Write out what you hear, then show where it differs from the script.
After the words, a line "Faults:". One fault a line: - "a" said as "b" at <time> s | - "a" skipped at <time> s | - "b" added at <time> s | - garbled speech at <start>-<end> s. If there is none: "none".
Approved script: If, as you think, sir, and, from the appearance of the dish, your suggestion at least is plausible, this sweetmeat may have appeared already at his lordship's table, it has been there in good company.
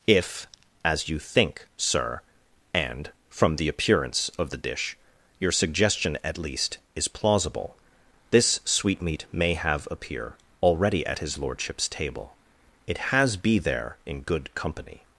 If, as you think, sir, and, from the appearance of the dish, your suggestion at least is plausible, this sweetmeat may have appear already at his lordship's table, it has be there in good company.
Faults:
- "appeared" said as "appear" at 9.9 s
- "been" said as "be" at 13.4 s